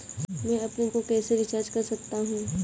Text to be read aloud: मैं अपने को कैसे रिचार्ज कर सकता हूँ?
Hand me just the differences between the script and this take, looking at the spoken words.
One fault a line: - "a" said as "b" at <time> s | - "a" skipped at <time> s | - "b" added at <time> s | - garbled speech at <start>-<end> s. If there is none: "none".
none